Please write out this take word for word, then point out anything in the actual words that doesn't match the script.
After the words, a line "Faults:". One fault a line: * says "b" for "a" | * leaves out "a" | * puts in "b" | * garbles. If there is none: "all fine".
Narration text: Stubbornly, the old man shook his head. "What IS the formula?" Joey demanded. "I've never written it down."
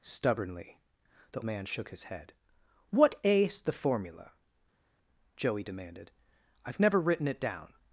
Stubbornly, the man shook his head. "What IS the formula?" Joey demanded. "I've never written it down."
Faults:
* leaves out "old"